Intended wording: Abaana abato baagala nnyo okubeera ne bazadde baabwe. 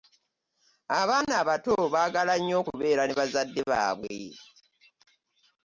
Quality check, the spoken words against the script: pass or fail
pass